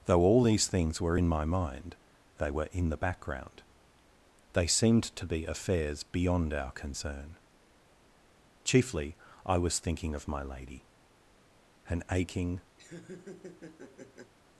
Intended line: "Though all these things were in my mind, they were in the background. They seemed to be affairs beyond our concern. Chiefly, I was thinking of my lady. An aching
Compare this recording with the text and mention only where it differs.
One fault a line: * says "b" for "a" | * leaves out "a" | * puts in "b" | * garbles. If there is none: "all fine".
all fine